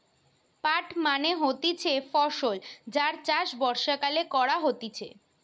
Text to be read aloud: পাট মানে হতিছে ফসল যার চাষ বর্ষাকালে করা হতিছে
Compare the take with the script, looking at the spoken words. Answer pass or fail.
pass